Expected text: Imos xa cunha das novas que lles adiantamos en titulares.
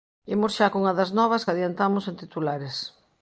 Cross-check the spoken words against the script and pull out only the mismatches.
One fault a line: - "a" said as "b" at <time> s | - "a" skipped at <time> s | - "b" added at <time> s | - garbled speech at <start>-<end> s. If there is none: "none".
- "que lles" skipped at 1.5 s